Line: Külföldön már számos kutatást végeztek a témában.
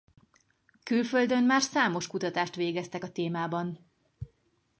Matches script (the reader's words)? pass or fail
pass